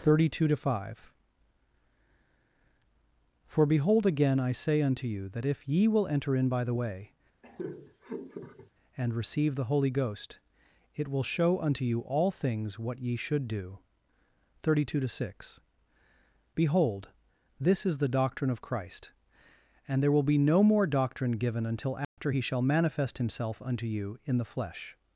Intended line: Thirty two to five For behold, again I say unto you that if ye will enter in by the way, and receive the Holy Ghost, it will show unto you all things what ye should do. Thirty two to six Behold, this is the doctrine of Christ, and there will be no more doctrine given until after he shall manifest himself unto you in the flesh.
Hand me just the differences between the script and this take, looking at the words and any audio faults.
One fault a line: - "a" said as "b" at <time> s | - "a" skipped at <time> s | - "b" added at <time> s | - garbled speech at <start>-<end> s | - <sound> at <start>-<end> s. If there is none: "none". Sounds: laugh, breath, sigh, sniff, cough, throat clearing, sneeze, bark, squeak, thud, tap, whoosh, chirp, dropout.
- laugh at 7.4-8.7 s
- dropout at 22.0-22.2 s